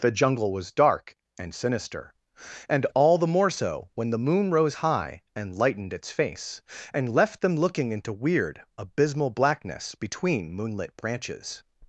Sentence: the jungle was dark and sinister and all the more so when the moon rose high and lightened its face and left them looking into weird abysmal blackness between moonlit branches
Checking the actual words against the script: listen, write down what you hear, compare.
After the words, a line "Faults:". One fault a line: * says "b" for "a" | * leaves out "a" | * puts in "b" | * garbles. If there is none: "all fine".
the jungle was dark and sinister and all the more so when the moon rose high and lightened its face and left them looking into weird abysmal blackness between moonlit branches
Faults:
all fine